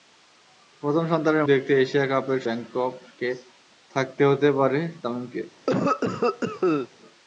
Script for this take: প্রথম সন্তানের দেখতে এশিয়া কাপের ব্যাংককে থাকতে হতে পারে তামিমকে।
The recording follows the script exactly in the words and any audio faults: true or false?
false